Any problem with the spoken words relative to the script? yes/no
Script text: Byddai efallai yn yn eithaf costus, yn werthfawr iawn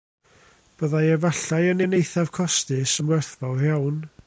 no